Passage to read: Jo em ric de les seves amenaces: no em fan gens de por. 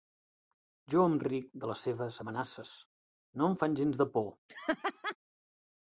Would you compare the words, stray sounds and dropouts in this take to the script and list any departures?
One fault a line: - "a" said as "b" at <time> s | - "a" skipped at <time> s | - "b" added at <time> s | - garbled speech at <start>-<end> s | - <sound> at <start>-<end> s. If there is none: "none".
- laugh at 4.5-5.2 s